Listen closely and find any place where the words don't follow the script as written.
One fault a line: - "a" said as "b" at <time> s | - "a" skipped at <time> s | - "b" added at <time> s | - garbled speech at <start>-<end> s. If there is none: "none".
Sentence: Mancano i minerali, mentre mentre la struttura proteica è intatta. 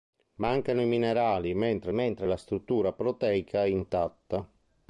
none